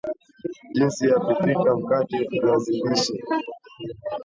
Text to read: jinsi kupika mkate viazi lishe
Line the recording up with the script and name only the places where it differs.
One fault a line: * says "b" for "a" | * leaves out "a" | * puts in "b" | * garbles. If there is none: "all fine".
* puts in "ya"